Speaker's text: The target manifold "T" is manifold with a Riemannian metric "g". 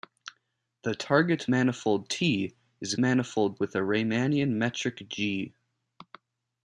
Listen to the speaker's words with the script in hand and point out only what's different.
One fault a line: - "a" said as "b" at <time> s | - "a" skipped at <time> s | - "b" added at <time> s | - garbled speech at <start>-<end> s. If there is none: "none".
none